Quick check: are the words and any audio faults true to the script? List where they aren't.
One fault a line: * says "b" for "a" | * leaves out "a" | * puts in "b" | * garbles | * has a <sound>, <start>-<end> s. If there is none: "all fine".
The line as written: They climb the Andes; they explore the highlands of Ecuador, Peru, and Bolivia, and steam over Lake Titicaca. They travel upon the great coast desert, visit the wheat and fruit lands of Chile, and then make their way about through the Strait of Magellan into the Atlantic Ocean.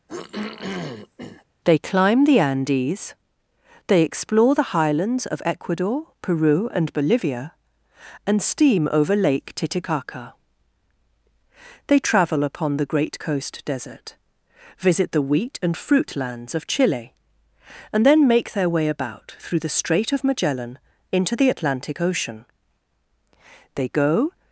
* has a throat clearing, 0.1-1.4 s
* puts in "They go"